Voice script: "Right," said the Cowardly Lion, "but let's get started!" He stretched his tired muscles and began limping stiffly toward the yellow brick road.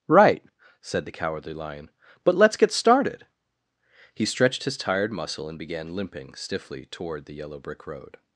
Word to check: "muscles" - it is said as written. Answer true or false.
false